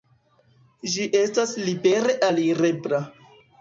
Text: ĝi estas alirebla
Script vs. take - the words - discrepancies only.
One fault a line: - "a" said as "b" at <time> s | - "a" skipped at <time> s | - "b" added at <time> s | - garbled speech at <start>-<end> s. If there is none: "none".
- "libere" added at 1.7 s